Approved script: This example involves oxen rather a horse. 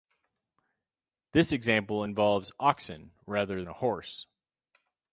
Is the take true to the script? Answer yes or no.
yes